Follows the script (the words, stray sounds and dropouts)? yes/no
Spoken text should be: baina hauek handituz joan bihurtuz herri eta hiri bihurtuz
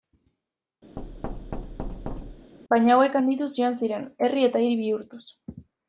no